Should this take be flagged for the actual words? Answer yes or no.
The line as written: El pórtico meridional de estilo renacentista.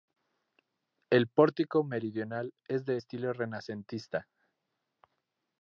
yes